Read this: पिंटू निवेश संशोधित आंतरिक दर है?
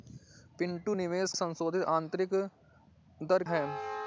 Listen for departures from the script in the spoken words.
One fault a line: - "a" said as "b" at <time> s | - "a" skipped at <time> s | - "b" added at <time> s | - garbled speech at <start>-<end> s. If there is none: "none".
none